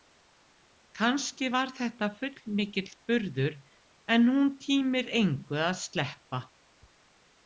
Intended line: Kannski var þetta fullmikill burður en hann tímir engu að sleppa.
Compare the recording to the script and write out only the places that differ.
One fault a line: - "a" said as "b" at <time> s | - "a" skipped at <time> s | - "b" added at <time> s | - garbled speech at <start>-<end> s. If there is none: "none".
- "hann" said as "hún" at 4.3 s